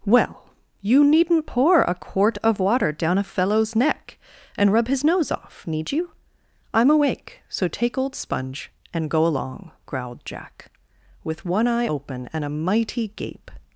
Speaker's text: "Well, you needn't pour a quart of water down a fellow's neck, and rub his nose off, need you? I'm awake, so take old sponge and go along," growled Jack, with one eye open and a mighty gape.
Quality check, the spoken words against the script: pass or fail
pass